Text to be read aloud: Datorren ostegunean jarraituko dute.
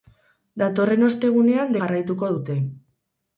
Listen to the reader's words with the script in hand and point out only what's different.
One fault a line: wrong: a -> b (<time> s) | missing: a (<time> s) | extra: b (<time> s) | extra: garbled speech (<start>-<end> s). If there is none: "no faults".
no faults